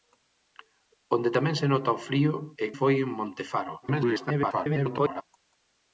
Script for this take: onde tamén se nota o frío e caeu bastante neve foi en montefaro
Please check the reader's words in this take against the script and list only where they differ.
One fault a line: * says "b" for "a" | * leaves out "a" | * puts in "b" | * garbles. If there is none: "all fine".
* leaves out "caeu bastante neve"
* garbles